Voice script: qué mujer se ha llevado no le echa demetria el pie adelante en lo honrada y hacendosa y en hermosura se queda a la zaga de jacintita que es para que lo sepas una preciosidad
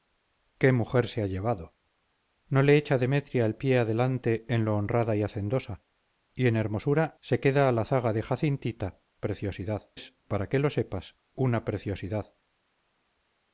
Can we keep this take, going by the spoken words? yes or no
no